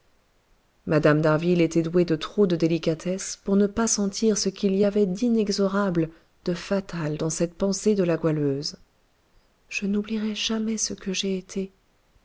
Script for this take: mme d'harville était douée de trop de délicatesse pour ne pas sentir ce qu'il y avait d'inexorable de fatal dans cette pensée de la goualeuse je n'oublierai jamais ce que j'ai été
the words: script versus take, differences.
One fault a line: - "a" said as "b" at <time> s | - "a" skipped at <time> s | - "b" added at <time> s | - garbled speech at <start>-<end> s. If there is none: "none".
none